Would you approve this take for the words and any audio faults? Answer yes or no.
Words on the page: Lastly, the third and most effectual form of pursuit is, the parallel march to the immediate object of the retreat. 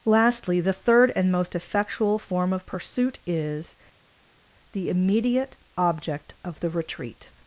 no